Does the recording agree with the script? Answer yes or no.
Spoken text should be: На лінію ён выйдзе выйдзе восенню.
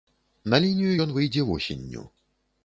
no